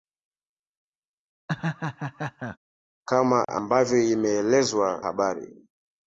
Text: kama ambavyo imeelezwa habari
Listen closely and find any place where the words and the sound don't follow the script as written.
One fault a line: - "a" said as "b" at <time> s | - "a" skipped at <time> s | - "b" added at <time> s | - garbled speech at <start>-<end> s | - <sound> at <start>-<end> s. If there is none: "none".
- laugh at 1.5-2.6 s